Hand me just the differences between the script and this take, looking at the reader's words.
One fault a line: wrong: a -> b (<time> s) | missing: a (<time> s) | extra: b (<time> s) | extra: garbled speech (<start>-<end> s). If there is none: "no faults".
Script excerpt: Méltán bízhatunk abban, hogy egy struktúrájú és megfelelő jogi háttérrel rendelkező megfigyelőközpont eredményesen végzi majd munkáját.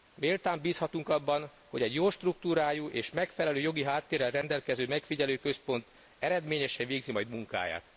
extra: jó (1.9 s)